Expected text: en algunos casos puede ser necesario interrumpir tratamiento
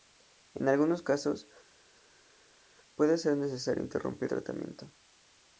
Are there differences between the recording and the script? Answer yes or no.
no